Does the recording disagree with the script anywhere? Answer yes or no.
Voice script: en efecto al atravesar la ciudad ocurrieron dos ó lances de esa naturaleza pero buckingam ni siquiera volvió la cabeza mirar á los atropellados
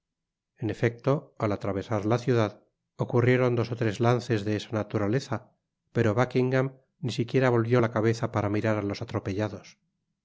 yes